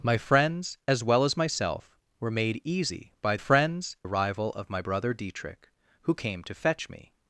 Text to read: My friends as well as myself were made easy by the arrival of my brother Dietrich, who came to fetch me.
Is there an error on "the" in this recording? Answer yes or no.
yes